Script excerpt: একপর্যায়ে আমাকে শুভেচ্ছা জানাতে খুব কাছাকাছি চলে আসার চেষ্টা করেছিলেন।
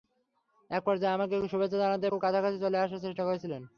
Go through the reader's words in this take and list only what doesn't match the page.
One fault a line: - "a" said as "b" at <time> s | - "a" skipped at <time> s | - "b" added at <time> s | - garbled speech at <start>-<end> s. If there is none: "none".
none